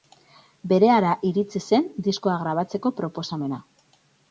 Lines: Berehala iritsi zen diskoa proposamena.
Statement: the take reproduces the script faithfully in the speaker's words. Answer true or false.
false